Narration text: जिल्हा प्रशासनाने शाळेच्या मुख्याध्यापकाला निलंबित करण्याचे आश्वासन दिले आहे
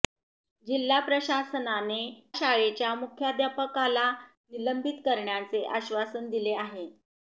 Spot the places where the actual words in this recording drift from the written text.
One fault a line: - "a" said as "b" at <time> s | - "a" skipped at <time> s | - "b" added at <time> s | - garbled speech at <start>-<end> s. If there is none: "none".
none